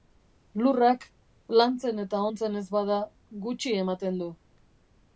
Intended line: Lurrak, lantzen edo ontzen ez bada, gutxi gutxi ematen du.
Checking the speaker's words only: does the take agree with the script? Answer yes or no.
no